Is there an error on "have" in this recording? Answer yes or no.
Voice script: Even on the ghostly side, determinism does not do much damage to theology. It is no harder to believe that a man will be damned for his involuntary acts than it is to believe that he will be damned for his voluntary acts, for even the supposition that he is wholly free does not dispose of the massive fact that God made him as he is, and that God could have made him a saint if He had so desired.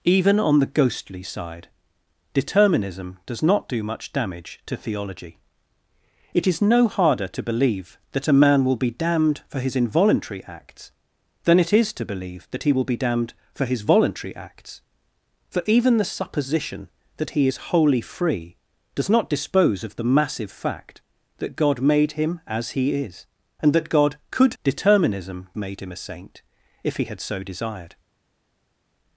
yes